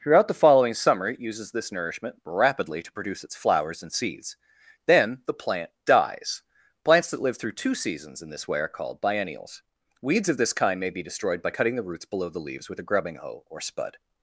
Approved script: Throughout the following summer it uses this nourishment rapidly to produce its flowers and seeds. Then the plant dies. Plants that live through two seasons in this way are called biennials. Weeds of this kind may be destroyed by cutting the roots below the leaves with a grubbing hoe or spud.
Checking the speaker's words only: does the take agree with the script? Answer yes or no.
yes